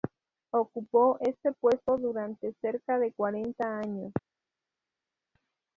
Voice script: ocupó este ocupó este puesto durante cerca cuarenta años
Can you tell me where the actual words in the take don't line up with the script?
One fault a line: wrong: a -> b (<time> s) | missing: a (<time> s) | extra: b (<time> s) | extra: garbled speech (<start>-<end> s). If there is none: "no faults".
missing: ocupó este (1.5 s)
extra: de (3.0 s)